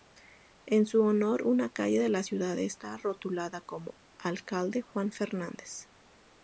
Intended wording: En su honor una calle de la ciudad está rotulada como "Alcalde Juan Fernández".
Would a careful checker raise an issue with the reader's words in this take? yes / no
no